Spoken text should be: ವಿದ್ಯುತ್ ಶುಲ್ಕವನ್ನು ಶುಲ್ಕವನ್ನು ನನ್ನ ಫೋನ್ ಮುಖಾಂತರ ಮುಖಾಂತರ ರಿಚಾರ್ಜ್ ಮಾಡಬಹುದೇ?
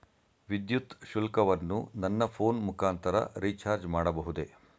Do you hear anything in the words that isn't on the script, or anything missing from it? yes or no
yes